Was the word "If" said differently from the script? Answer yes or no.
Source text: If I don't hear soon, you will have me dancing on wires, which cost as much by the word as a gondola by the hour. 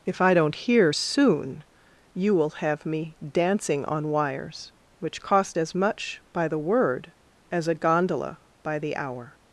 no